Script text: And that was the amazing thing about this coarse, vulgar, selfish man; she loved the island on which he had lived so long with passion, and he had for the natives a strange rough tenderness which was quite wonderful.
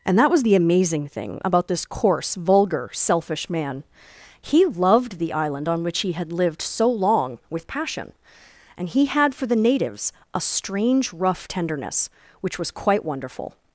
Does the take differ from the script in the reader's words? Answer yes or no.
yes